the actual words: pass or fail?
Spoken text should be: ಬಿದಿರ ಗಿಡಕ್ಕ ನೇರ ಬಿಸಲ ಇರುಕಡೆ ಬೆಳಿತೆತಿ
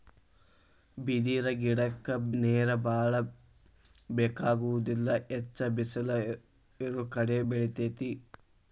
fail